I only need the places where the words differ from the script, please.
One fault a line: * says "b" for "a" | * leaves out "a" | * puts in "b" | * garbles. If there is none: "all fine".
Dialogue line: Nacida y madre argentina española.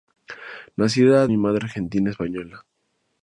all fine